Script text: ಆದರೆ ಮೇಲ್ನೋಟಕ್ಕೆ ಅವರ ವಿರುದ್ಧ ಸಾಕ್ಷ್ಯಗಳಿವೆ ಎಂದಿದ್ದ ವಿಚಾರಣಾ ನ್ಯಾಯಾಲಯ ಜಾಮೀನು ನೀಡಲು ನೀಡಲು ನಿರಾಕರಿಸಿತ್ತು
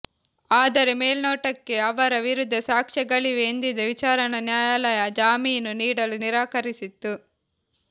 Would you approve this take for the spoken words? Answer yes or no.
no